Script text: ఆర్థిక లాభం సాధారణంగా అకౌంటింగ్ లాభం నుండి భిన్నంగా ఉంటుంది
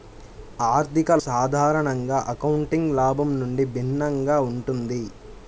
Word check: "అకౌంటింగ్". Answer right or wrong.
right